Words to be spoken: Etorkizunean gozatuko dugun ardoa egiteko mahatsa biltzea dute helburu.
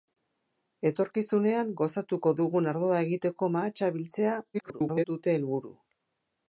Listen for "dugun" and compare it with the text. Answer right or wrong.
right